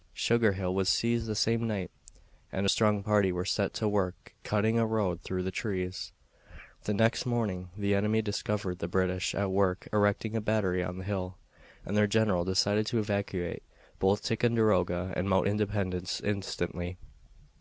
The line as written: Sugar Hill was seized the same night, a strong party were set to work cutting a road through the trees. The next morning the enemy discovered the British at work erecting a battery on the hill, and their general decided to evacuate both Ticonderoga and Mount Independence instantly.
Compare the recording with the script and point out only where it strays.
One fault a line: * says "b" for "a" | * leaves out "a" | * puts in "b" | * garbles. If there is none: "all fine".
* puts in "and"